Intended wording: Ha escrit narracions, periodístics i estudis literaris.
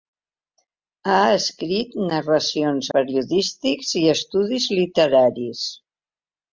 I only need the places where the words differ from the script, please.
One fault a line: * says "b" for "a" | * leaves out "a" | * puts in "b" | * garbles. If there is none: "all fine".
all fine